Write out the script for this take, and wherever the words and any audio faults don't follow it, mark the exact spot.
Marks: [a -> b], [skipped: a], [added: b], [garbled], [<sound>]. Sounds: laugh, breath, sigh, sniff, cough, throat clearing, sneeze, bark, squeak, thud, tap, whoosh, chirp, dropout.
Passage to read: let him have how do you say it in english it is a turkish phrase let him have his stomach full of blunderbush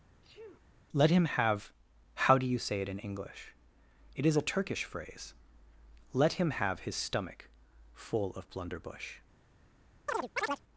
[sneeze] let him have how do you say it in english it is a turkish phrase let him have his stomach full of blunderbush [chirp]